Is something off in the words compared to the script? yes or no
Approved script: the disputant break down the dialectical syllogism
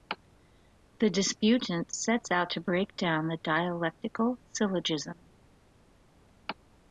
yes